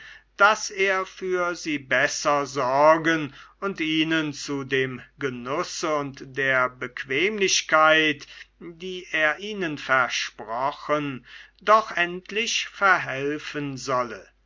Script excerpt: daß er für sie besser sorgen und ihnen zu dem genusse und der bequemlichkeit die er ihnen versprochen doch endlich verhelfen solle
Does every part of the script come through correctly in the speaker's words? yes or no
yes